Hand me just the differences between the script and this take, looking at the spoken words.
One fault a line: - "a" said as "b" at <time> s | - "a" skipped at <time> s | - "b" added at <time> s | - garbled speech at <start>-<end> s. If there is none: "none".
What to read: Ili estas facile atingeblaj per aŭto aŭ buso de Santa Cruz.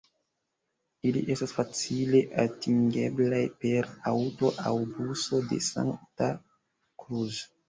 none